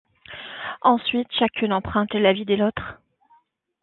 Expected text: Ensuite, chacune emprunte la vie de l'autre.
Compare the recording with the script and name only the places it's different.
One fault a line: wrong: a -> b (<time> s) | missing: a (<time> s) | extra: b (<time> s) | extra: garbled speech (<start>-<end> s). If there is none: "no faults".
no faults